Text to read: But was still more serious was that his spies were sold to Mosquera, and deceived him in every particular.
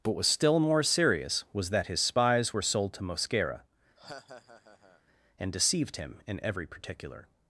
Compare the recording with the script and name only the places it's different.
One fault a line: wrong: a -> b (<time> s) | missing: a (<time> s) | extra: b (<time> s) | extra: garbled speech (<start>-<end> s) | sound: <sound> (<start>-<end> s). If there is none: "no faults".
sound: laugh (4.0-5.0 s)